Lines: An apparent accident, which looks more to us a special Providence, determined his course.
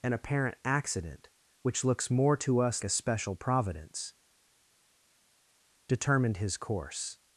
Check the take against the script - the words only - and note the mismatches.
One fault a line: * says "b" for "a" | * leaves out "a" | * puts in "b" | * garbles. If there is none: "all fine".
all fine